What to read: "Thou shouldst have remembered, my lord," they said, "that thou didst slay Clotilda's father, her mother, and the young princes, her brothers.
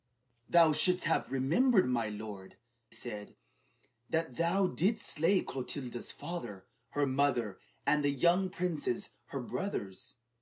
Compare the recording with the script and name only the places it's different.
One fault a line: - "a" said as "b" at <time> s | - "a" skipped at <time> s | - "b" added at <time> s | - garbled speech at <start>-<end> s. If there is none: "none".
- "they" skipped at 2.6 s